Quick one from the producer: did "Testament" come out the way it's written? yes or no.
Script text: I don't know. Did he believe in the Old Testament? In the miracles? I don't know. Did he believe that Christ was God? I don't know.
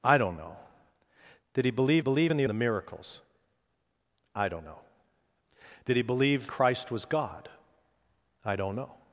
no